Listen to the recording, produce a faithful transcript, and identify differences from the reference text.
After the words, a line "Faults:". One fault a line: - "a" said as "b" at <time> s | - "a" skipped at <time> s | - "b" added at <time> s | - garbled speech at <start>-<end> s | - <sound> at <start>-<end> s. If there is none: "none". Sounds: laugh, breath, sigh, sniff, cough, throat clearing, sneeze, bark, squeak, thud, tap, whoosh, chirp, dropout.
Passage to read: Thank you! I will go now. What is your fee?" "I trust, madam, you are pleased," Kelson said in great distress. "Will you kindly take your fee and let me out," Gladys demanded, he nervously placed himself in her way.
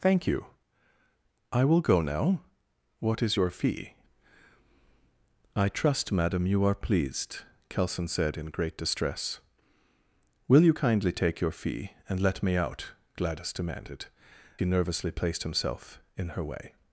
Thank you! I will go now. What is your fee?" "I trust, madam, you are pleased," Kelson said in great distress. "Will you kindly take your fee and let me out," Gladys demanded, he nervously placed himself in her way.
Faults:
none